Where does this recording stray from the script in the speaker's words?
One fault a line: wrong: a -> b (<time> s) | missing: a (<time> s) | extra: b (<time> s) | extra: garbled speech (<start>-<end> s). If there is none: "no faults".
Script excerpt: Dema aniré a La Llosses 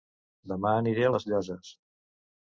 wrong: La -> Les (1.1 s)